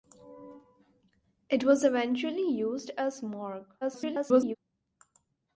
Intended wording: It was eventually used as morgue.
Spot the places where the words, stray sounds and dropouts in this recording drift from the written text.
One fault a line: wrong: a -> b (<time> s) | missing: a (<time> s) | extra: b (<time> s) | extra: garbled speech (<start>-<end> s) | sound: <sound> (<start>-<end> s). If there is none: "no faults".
extra: garbled speech (3.8-4.6 s)